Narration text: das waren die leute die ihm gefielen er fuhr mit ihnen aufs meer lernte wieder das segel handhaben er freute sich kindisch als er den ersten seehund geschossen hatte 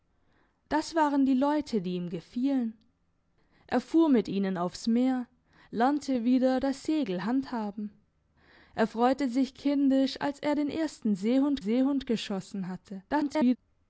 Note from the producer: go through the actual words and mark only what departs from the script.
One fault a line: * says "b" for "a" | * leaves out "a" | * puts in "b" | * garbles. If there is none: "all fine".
* puts in "seehund"
* garbles